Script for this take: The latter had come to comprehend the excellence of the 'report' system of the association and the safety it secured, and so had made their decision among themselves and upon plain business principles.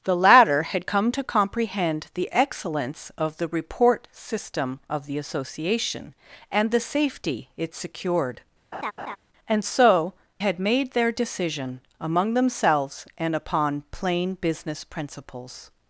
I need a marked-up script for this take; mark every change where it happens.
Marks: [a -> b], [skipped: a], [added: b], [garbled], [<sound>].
The latter had come to comprehend the excellence of the 'report' system of the association and the safety it secured, [laugh] and so had made their decision among themselves and upon plain business principles.